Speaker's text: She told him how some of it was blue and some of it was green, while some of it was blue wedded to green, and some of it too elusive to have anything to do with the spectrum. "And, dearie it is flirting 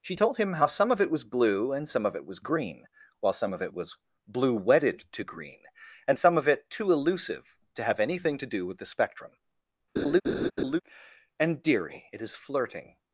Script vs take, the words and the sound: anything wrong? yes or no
yes